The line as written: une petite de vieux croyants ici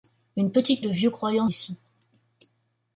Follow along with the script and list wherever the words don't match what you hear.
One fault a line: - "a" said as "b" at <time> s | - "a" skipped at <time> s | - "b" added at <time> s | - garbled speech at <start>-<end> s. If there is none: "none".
none